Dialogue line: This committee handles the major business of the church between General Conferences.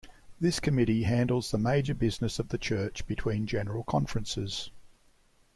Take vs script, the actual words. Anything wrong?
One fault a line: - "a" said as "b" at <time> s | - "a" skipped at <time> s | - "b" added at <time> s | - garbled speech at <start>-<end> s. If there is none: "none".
none